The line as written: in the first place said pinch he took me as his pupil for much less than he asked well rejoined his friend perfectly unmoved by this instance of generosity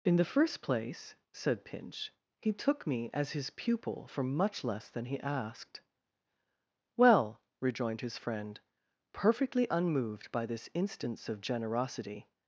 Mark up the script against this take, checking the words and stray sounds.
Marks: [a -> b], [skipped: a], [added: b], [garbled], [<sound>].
in the first place said pinch he took me as his pupil for much less than he asked well rejoined his friend perfectly unmoved by this instance of generosity